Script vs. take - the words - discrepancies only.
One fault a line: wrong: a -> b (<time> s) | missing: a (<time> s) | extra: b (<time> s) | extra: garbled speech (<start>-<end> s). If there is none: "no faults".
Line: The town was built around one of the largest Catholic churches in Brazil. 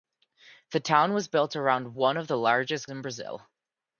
missing: Catholic churches (2.9 s)